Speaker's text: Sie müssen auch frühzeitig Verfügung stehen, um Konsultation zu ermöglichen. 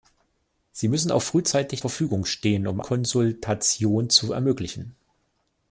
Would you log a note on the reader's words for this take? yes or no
no